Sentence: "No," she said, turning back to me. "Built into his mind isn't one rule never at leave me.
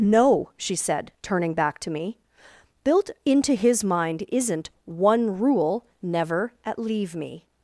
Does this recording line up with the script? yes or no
yes